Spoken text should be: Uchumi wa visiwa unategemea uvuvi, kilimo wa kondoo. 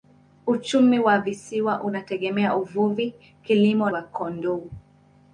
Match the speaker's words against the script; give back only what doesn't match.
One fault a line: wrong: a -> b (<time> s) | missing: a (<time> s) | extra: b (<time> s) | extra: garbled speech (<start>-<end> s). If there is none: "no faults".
no faults